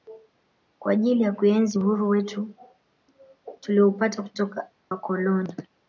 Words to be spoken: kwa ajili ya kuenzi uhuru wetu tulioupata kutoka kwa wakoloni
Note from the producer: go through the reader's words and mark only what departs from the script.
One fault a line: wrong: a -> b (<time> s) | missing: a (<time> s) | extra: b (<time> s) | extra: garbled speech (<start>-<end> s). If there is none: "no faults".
missing: kwa (4.7 s)